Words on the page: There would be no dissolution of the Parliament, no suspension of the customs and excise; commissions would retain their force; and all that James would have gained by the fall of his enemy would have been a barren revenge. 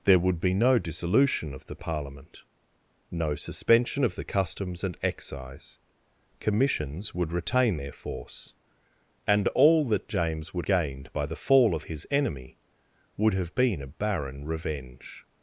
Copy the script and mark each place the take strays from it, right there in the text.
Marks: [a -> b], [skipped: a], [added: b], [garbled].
There would be no dissolution of the Parliament, no suspension of the customs and excise; commissions would retain their force; and all that James would [skipped: have] gained by the fall of his enemy would have been a barren revenge.